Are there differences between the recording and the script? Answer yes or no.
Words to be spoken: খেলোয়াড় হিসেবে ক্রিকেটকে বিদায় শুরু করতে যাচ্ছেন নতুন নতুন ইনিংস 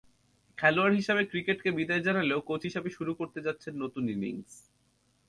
yes